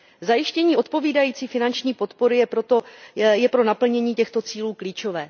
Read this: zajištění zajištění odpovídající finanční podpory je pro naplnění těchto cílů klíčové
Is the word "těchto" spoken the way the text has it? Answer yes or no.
yes